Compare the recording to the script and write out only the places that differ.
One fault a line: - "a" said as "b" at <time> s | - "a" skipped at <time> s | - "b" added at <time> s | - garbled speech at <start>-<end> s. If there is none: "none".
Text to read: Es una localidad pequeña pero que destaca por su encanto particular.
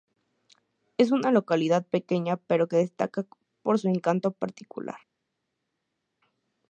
none